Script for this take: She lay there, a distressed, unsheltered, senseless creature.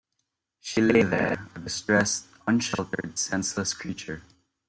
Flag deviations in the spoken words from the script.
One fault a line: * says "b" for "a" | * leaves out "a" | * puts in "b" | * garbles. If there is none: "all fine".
all fine